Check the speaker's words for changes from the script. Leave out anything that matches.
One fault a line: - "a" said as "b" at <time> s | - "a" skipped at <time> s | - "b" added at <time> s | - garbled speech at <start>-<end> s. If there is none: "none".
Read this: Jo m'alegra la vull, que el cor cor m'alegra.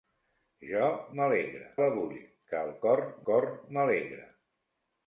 none